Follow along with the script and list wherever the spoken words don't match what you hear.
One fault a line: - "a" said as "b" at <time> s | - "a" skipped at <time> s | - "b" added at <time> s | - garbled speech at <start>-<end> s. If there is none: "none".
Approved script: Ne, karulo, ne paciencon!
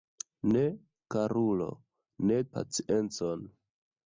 none